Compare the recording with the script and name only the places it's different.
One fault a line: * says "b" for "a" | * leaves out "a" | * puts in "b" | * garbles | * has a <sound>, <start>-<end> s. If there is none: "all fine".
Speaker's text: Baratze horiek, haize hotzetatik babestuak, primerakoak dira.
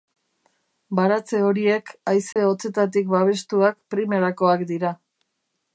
* has a dropout, 2.3-2.4 s